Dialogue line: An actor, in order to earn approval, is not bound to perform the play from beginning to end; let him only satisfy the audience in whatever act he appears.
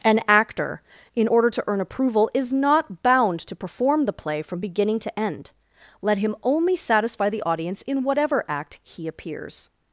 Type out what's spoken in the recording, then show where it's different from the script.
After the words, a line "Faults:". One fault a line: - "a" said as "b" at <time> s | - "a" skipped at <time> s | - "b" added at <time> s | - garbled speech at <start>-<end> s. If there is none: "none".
An actor, in order to earn approval, is not bound to perform the play from beginning to end; let him only satisfy the audience in whatever act he appears.
Faults:
none